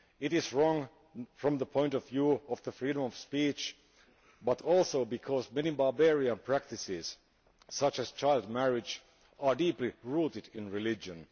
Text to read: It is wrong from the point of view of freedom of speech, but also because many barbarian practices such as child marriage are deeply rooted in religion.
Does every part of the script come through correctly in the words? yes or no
yes